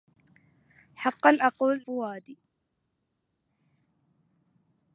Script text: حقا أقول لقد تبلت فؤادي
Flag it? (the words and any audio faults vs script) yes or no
yes